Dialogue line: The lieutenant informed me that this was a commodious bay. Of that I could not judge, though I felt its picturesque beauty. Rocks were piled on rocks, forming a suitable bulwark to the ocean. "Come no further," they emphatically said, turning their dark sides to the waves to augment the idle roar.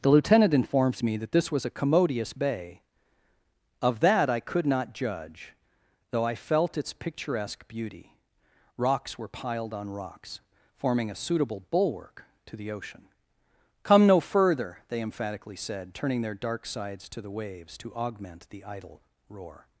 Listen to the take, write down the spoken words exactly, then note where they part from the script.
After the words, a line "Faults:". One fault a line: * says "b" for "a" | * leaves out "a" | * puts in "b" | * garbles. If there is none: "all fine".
The lieutenant informs me that this was a commodious bay. Of that I could not judge, though I felt its picturesque beauty. Rocks were piled on rocks, forming a suitable bulwark to the ocean. "Come no further," they emphatically said, turning their dark sides to the waves to augment the idle roar.
Faults:
* says "informs" for "informed"